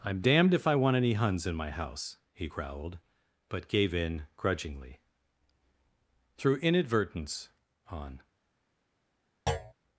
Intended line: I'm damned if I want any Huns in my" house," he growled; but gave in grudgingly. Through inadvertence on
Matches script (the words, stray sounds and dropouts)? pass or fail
fail